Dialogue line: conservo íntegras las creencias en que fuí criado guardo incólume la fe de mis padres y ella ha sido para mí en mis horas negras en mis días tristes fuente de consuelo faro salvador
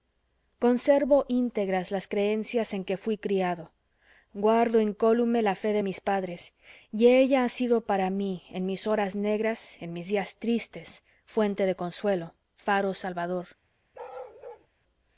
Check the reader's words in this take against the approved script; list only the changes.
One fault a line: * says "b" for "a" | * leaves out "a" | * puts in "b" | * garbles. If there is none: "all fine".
all fine